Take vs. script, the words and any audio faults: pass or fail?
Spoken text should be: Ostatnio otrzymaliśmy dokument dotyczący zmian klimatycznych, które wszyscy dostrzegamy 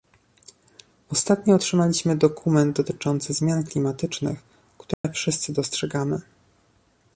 fail